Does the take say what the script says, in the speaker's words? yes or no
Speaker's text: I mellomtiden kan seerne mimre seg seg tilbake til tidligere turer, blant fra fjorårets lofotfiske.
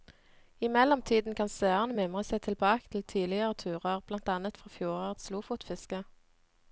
no